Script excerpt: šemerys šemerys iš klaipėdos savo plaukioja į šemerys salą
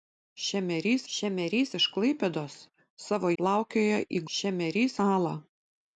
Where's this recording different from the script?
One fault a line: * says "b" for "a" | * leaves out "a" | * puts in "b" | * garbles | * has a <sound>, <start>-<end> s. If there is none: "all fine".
all fine